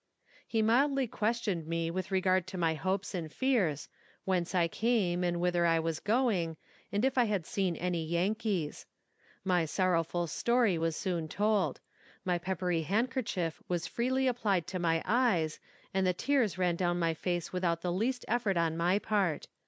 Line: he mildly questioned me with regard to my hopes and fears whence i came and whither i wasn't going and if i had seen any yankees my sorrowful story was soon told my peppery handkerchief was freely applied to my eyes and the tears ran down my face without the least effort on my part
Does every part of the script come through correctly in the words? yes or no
no